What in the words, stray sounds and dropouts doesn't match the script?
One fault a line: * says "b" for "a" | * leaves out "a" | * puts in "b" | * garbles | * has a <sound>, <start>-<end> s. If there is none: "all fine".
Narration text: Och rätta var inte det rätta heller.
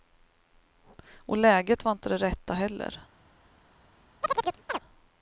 * says "läget" for "rätta"
* has a chirp, 4.2-4.8 s